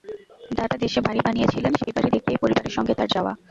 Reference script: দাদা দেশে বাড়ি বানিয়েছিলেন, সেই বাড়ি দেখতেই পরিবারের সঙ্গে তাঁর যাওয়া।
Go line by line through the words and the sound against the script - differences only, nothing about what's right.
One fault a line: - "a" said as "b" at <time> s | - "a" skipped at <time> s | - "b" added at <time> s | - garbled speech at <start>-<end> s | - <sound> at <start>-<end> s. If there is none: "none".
- dropout at 1.8-1.9 s